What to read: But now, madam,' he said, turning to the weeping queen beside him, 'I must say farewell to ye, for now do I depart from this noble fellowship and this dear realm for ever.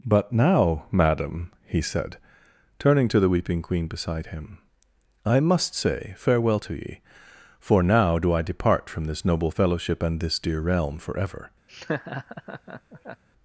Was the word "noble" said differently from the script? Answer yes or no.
no